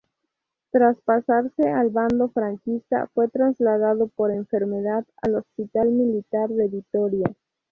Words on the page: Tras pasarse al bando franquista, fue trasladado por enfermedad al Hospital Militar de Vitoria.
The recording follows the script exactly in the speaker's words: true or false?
true